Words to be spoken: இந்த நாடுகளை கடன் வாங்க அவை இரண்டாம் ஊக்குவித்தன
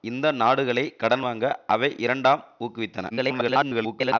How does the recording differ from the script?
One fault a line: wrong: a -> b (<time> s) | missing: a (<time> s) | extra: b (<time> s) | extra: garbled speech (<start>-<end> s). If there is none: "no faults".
extra: garbled speech (3.1-4.2 s)